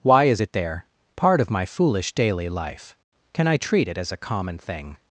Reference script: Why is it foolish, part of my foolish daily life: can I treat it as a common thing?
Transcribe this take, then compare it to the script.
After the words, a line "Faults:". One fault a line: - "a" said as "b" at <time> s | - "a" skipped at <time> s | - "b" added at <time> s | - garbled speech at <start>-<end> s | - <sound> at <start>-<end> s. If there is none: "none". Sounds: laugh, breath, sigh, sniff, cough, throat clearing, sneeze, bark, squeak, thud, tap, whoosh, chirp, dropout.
Why is it there, part of my foolish daily life: can I treat it as a common thing?
Faults:
- "foolish" said as "there" at 0.5 s